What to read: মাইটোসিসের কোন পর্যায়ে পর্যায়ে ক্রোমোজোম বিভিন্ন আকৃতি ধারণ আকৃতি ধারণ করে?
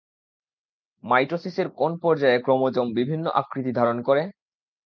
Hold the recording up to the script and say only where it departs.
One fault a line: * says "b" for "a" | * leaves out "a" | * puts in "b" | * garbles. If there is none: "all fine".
* leaves out "পর্যায়ে"
* leaves out "আকৃতি ধারণ"